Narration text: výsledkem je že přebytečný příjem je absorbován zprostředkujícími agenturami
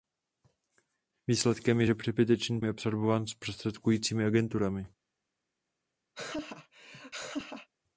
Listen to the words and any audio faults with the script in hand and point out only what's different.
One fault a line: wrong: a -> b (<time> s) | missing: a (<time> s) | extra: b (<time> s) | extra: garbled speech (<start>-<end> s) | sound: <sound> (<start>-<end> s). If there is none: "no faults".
missing: příjem (2.6 s)
sound: laugh (6.1-7.7 s)